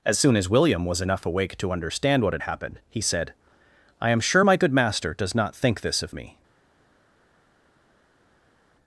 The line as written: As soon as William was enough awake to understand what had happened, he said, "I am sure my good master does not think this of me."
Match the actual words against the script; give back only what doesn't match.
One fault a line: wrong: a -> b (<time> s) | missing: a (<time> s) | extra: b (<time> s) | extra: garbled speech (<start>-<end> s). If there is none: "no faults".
no faults